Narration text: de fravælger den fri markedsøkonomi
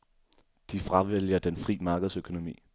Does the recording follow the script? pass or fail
pass